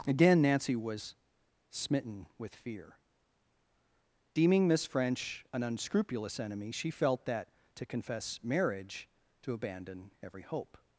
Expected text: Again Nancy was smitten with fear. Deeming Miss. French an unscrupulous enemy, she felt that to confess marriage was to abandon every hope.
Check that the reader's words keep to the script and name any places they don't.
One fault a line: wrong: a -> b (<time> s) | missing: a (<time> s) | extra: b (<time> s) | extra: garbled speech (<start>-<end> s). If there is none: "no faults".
missing: was (9.1 s)